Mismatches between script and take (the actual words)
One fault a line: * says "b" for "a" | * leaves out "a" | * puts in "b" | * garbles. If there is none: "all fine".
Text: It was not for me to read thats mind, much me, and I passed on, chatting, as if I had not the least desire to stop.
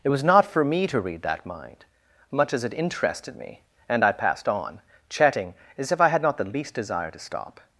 * says "that" for "thats"
* puts in "as it interested"